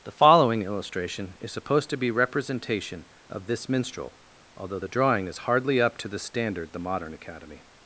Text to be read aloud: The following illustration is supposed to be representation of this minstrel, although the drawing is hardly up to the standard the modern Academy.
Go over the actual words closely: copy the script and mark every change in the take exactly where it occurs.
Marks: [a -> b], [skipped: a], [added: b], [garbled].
The following illustration is supposed to be representation of this minstrel, although the drawing is hardly up to the standard the modern Academy.